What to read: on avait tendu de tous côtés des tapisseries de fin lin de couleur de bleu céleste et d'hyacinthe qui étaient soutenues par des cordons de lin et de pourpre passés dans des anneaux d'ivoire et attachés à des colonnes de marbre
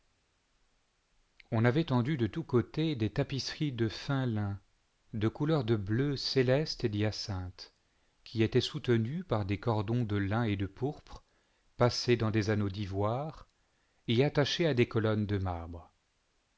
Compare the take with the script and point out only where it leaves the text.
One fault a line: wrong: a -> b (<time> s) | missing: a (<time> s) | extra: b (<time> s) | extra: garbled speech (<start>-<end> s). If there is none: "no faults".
no faults